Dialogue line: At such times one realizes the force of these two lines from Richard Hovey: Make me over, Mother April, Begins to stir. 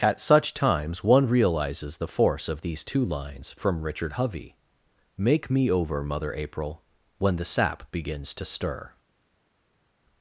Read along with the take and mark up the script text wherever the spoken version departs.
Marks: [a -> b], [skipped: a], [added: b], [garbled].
At such times one realizes the force of these two lines from Richard Hovey: Make me over, Mother April, [added: When the sap] Begins to stir.